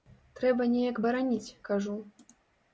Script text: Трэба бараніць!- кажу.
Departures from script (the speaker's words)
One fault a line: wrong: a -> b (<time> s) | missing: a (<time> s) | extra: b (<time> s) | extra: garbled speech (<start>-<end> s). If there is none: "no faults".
extra: неяк (0.7 s)